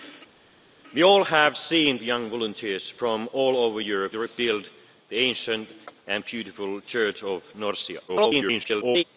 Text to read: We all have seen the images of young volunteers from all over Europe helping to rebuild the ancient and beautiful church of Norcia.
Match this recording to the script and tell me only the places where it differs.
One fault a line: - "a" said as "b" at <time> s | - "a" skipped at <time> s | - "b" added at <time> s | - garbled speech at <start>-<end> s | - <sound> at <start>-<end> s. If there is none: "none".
- "the images of" skipped at 2.0 s
- "helping" skipped at 4.1 s
- garbled speech at 8.1-9.0 s